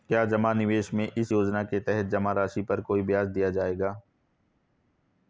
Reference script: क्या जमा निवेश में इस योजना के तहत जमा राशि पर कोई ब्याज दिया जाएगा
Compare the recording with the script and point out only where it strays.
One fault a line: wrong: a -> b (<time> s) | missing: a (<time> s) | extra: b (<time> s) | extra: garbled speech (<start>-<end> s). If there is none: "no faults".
no faults